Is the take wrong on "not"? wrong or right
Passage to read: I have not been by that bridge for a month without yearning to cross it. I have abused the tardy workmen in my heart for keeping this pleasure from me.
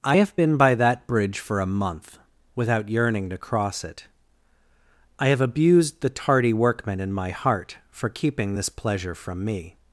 wrong